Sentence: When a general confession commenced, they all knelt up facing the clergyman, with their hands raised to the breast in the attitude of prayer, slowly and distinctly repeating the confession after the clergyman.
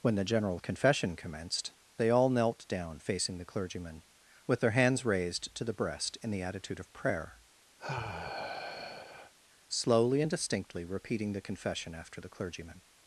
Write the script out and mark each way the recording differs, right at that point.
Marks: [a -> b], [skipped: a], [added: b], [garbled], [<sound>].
When [a -> the] general confession commenced, they all knelt [up -> down] facing the clergyman, with their hands raised to the breast in the attitude of prayer, [sigh] slowly and distinctly repeating the confession after the clergyman.